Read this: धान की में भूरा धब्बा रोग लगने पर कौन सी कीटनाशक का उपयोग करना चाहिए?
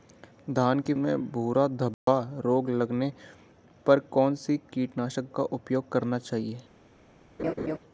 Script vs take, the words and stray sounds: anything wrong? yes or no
yes